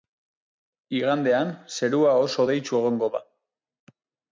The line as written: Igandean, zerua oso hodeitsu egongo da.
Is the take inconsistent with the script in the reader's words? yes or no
no